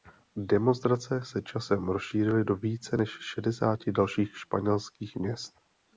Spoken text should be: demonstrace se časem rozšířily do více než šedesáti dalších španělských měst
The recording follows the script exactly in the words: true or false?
true